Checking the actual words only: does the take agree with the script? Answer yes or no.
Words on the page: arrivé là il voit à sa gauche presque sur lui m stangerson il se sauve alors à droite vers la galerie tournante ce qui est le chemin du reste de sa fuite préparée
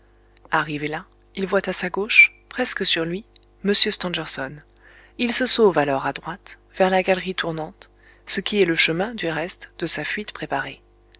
yes